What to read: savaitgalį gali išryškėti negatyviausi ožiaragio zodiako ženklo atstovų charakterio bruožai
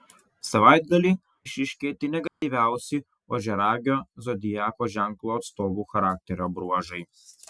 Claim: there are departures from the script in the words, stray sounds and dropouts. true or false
true